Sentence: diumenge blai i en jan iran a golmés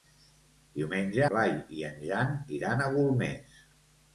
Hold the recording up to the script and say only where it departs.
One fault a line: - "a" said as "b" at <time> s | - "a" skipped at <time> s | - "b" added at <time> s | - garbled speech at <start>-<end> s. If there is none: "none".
none